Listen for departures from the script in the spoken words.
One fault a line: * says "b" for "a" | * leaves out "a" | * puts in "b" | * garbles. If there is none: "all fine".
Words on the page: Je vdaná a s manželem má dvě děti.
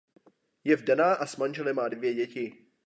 all fine